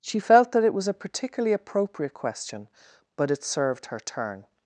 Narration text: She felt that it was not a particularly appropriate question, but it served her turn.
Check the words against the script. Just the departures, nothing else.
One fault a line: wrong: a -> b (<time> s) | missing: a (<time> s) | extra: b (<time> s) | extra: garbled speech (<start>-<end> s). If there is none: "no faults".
missing: not (0.9 s)